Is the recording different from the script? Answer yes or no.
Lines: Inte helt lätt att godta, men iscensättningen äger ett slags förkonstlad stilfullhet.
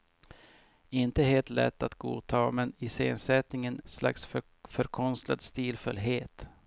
yes